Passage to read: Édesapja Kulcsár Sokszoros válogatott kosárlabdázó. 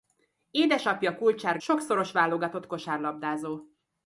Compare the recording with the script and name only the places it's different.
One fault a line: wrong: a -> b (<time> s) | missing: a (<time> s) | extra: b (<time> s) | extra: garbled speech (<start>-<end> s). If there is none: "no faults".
no faults